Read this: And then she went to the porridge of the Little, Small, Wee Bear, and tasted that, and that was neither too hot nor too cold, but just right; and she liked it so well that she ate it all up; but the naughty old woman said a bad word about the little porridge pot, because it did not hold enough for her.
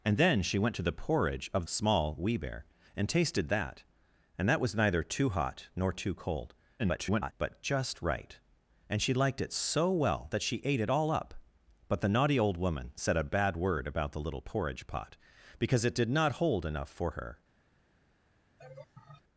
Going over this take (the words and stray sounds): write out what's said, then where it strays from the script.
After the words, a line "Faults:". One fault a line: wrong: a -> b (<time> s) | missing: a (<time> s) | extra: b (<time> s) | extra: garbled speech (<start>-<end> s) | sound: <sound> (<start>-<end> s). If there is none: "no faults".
And then she went to the porridge of Small, Wee Bear, and tasted that, and that was neither too hot nor too cold, [garbled] but just right; and she liked it so well that she ate it all up; but the naughty old woman said a bad word about the little porridge pot, because it did not hold enough for her.
Faults:
missing: the Little (1.6 s)
extra: garbled speech (6.8-7.3 s)
sound: laugh (18.6-19.2 s)